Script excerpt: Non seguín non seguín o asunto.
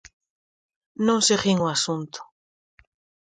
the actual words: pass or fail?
fail